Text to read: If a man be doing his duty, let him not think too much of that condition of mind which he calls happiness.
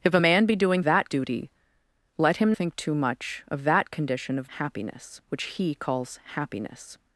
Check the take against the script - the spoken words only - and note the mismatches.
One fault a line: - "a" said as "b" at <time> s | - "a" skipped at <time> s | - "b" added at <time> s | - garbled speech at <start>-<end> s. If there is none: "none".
- "his" said as "that" at 0.8 s
- "not" skipped at 2.5 s
- "mind" said as "happiness" at 4.6 s